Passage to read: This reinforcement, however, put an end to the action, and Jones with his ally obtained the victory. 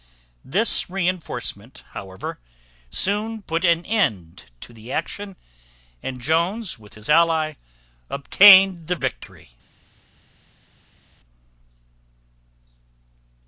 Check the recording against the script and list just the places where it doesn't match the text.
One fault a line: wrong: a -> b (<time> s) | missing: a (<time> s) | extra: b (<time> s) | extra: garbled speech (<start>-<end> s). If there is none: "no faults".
extra: soon (2.9 s)